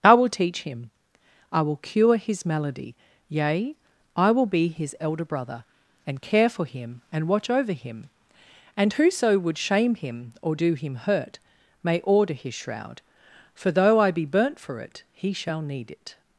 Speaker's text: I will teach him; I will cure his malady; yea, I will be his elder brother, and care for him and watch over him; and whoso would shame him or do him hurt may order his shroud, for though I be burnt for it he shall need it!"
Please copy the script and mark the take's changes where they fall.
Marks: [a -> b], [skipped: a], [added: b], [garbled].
I will teach him; I will cure his malady; yea, I will be his elder brother, and care for him and watch over him; and whoso would shame him or do him hurt may order his shroud, for though I be burnt for it he shall need it!"